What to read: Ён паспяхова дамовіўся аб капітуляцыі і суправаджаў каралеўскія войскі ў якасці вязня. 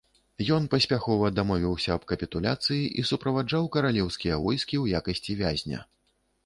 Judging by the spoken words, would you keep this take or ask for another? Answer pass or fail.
pass